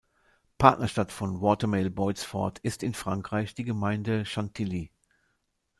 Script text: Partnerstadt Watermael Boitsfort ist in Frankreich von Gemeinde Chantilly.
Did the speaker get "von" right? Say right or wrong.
wrong